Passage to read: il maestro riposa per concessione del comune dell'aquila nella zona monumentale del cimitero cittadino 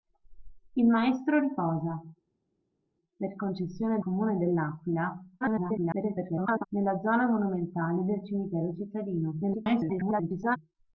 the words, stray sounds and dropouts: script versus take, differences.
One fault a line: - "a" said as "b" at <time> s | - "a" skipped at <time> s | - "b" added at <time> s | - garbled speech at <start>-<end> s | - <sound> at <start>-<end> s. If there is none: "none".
- "del" skipped at 4.0 s
- garbled speech at 5.4-6.7 s
- garbled speech at 9.4-10.6 s